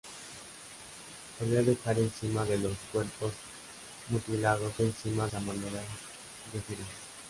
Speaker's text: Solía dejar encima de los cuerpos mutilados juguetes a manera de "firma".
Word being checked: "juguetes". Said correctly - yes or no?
no